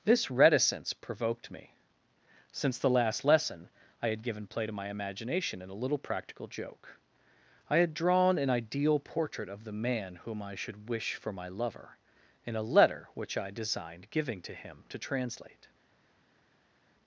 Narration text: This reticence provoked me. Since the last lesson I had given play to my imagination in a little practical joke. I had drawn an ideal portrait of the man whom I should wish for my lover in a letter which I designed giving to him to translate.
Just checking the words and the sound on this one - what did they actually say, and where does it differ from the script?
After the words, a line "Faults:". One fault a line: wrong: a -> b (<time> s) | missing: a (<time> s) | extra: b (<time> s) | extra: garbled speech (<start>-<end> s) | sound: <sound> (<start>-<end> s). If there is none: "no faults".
This reticence provoked me. Since the last lesson I had given play to my imagination in a little practical joke. I had drawn an ideal portrait of the man whom I should wish for my lover in a letter which I designed giving to him to translate.
Faults:
no faults